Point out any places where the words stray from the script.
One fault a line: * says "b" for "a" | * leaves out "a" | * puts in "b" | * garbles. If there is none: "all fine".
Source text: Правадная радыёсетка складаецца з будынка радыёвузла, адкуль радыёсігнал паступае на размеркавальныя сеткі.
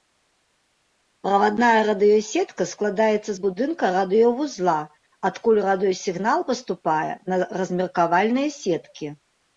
all fine